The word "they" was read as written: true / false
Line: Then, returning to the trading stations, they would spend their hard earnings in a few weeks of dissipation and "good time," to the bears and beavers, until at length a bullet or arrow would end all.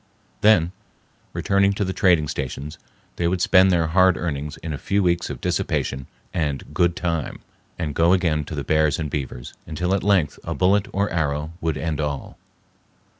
true